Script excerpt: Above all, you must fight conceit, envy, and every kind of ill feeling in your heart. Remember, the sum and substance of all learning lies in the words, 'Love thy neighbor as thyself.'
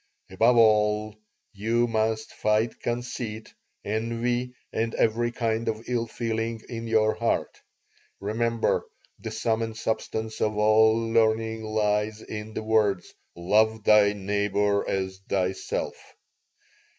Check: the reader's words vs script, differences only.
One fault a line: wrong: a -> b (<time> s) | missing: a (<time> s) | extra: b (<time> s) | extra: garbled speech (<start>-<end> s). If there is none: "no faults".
no faults